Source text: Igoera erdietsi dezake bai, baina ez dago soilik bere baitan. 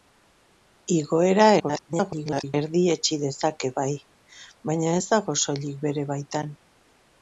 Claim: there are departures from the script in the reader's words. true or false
true